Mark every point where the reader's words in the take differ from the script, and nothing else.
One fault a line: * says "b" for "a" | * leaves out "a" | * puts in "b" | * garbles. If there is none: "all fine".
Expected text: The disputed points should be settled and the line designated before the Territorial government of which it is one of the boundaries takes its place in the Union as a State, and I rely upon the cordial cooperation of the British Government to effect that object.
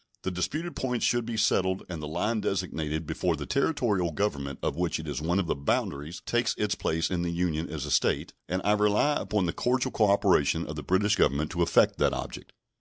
all fine